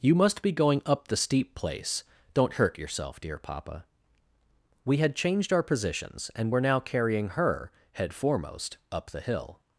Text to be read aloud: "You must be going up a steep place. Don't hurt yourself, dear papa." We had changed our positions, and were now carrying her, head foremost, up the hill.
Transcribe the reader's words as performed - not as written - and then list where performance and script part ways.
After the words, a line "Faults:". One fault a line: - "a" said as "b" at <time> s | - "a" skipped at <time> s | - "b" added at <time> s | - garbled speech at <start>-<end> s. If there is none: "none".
"You must be going up the steep place. Don't hurt yourself, dear papa." We had changed our positions, and were now carrying her, head foremost, up the hill.
Faults:
- "a" said as "the" at 1.1 s